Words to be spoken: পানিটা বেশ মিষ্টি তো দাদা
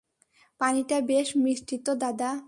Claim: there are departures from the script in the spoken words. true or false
false